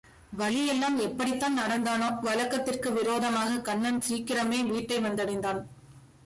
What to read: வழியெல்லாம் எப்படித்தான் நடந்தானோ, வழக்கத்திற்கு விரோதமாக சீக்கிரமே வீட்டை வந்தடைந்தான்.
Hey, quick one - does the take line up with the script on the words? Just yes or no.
no